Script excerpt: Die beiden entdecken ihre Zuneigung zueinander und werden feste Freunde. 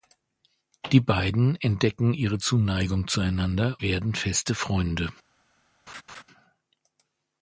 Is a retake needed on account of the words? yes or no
yes